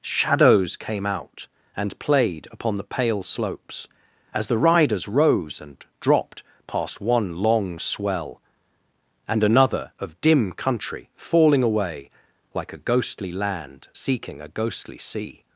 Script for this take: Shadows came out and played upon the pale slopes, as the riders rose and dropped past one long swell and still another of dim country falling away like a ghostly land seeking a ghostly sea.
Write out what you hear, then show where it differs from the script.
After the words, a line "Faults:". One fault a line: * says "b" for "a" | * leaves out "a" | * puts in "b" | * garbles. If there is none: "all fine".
Shadows came out and played upon the pale slopes, as the riders rose and dropped past one long swell and another of dim country falling away like a ghostly land seeking a ghostly sea.
Faults:
* leaves out "still"